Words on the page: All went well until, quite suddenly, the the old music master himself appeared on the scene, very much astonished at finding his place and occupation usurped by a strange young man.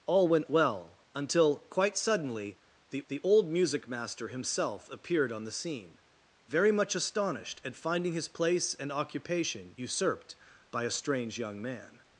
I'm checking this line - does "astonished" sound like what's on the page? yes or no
yes